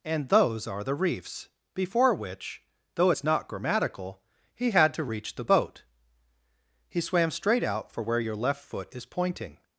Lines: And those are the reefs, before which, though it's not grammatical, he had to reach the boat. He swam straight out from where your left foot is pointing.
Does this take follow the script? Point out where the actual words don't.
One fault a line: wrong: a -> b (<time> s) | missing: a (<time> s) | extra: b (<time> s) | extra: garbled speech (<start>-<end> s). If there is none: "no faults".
wrong: from -> for (7.9 s)